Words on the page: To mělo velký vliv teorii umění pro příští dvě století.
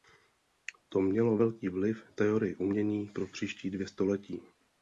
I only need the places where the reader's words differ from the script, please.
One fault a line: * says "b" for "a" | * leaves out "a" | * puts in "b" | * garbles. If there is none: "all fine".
all fine